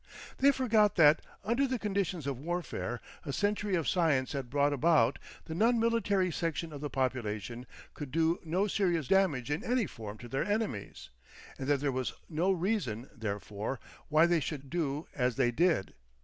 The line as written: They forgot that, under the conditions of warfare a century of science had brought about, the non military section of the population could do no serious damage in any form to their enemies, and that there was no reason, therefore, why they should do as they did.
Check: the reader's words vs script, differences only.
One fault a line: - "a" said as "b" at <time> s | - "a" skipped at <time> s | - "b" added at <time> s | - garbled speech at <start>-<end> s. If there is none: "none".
none